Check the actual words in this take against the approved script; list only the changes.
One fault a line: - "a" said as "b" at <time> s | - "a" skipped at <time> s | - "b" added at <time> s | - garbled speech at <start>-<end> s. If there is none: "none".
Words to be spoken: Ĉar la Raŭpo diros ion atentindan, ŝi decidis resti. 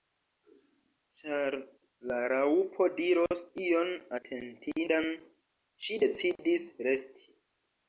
none